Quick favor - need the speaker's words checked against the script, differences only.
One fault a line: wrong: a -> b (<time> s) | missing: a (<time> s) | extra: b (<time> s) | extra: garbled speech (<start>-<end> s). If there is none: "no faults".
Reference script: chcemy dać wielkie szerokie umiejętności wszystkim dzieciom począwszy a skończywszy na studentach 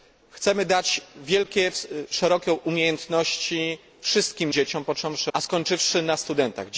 no faults